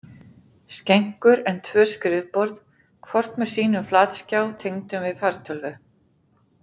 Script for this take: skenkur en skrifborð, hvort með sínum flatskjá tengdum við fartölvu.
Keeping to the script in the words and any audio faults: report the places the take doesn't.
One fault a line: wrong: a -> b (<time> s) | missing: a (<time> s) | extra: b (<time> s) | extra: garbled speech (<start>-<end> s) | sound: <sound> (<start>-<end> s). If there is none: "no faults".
extra: tvö (1.7 s)